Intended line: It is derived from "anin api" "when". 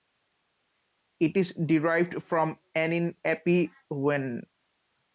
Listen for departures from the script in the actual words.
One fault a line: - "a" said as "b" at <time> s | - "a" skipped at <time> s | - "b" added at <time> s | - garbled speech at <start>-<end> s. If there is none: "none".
none